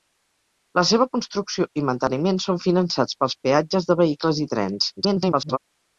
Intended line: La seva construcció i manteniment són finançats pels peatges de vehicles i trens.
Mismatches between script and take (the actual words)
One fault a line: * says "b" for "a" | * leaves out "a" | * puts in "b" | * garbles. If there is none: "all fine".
* garbles